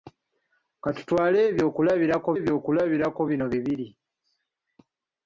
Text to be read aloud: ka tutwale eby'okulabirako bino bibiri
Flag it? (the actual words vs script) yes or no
yes